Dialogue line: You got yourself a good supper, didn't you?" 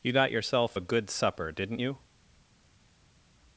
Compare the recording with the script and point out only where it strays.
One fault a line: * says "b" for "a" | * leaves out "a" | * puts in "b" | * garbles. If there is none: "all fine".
all fine